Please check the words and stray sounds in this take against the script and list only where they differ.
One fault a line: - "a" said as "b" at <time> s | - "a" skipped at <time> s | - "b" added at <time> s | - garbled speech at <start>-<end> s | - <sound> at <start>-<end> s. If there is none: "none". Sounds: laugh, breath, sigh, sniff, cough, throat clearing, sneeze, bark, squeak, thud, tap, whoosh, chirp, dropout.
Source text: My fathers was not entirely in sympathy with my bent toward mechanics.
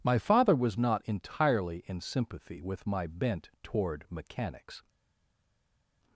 - "fathers" said as "father" at 0.2 s